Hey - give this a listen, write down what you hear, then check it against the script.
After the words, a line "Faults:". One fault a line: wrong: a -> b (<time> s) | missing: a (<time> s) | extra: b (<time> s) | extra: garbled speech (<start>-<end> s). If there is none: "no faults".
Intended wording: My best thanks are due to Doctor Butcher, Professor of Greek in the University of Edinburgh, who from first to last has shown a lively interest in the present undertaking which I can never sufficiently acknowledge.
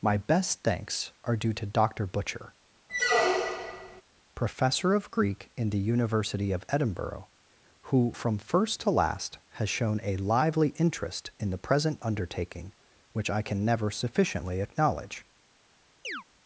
My best thanks are due to Doctor Butcher, Professor of Greek in the University of Edinburgh, who from first to last has shown a lively interest in the present undertaking which I can never sufficiently acknowledge.
Faults:
no faults